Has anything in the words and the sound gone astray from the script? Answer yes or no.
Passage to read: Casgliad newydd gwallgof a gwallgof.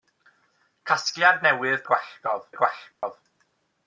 yes